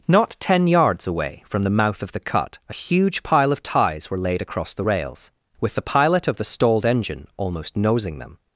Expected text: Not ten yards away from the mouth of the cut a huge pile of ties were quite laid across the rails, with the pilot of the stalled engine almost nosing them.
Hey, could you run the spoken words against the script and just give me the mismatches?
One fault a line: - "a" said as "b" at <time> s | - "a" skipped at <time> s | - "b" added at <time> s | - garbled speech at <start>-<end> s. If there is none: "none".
- "quite" skipped at 4.2 s